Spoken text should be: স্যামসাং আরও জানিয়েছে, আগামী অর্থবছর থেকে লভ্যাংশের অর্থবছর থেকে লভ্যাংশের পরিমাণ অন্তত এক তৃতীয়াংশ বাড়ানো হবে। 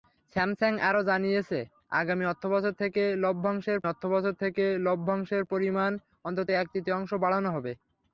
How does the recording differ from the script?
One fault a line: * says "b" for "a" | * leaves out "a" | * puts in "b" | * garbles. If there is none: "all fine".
all fine